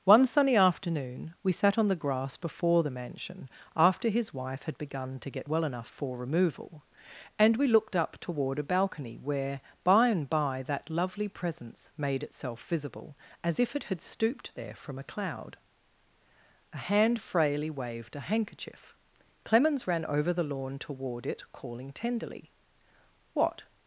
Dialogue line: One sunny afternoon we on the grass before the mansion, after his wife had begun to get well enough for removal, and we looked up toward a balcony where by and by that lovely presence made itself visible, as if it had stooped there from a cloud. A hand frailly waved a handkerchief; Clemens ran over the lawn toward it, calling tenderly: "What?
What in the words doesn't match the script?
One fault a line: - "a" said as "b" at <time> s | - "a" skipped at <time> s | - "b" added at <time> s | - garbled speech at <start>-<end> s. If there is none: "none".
- "sat" added at 1.5 s